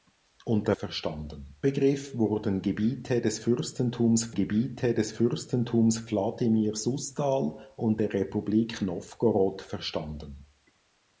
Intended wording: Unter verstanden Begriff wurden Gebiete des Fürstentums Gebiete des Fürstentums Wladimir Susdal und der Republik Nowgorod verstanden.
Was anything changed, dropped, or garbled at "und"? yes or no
no